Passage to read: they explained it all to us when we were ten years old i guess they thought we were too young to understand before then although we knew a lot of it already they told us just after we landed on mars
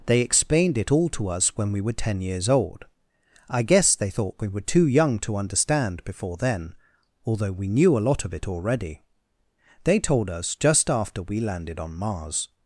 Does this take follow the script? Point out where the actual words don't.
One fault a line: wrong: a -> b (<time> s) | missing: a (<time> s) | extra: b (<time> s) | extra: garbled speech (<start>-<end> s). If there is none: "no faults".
no faults